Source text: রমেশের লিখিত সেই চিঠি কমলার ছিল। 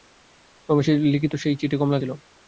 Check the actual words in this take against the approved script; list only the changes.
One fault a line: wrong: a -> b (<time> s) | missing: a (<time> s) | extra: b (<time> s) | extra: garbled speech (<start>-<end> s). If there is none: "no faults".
no faults